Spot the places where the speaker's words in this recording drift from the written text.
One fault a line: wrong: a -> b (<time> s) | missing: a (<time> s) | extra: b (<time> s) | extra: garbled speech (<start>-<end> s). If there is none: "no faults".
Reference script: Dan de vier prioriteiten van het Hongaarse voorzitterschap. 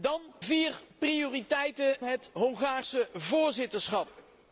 missing: de (0.2 s)
missing: van (2.0 s)